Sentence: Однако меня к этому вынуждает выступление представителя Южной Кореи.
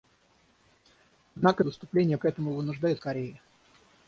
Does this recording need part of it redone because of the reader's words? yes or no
yes